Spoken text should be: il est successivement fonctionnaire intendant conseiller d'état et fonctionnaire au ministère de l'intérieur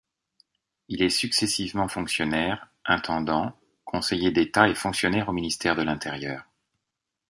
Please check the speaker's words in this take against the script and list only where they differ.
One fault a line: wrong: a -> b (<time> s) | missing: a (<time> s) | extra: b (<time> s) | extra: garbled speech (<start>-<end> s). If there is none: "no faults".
no faults